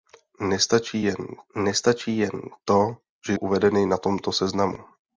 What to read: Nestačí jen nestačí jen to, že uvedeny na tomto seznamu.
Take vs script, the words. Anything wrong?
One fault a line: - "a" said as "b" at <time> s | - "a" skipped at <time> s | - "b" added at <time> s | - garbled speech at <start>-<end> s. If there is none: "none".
none